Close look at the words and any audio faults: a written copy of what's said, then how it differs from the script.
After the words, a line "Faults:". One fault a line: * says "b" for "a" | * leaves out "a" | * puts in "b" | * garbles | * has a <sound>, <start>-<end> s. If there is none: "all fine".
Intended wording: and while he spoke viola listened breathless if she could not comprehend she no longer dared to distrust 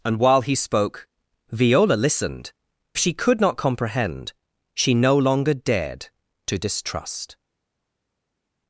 and while he spoke viola listened she could not comprehend she no longer dared to distrust
Faults:
* leaves out "breathless if"